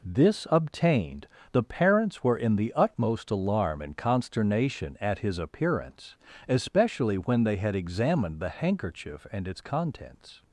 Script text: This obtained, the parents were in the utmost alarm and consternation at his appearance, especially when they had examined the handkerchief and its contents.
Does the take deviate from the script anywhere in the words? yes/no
no